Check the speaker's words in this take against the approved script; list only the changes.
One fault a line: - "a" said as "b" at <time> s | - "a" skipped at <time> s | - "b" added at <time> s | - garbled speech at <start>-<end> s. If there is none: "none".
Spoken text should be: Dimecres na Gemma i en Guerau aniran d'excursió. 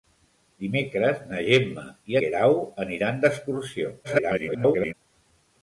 - "en" skipped at 2.2 s
- garbled speech at 4.0-4.9 s